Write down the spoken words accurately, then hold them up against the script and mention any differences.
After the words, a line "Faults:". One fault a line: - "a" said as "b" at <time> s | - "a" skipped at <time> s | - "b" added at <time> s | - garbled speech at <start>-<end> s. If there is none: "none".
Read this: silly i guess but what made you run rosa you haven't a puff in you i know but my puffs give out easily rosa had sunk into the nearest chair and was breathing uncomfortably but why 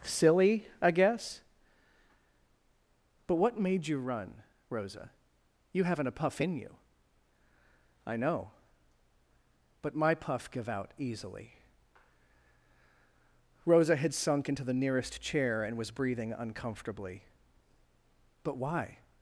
silly i guess but what made you run rosa you haven't a puff in you i know but my puff give out easily rosa had sunk into the nearest chair and was breathing uncomfortably but why
Faults:
- "puffs" said as "puff" at 10.1 s